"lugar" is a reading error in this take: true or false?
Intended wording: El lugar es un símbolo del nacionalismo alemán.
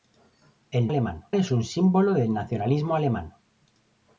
true